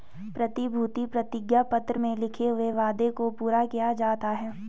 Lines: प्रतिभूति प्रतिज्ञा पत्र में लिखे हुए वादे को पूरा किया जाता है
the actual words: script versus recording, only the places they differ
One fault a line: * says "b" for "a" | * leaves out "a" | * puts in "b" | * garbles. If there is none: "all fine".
all fine